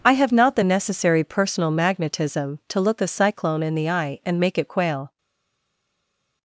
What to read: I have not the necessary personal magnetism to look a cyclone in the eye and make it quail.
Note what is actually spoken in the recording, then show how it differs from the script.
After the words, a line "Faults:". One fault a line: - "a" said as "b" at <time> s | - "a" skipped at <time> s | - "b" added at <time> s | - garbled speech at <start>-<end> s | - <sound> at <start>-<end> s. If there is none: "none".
I have not the necessary personal magnetism to look a cyclone in the eye and make it quail.
Faults:
none